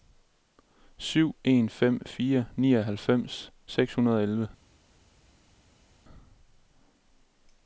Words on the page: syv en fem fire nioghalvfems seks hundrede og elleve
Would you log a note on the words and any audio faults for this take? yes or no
no